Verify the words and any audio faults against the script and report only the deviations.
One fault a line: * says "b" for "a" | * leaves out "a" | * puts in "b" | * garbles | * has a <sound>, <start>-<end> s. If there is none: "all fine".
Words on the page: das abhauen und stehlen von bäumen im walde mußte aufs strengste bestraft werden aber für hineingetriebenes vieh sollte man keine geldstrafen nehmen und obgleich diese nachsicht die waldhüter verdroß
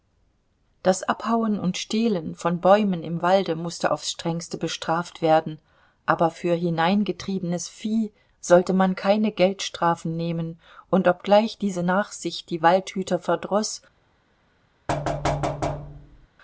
* has a thud, 14.9-16.3 s